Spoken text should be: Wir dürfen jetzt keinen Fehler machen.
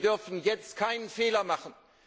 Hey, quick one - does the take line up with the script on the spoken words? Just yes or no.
yes